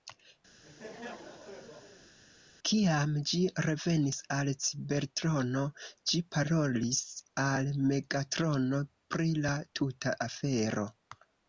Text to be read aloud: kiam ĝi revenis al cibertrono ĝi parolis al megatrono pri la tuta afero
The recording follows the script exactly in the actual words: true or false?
true